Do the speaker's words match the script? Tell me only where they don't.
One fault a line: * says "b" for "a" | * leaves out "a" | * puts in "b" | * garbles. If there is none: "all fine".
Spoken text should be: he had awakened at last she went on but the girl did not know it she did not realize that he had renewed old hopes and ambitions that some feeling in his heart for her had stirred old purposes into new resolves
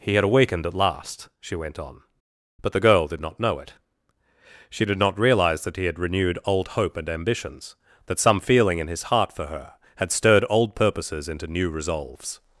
* says "hope" for "hopes"